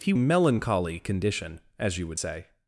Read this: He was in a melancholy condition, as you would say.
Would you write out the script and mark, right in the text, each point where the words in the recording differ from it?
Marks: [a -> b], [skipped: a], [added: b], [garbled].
He [skipped: was in a] melancholy condition, as you would say.